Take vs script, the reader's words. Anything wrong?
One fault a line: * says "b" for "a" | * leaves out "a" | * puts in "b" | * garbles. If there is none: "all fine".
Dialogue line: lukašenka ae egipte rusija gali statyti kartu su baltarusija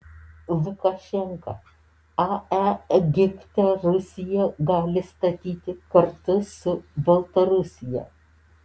all fine